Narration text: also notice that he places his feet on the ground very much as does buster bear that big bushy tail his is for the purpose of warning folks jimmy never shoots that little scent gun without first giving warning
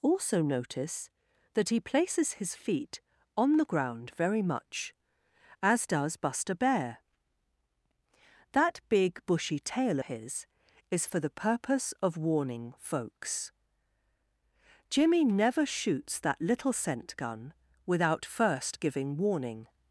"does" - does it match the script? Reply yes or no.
yes